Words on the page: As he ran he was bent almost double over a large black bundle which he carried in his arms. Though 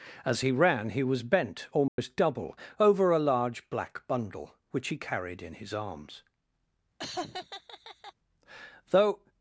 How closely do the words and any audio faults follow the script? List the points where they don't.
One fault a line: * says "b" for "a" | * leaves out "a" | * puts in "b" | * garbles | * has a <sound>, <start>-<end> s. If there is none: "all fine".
* has a dropout, 1.9-2.0 s
* has a laugh, 7.0-8.1 s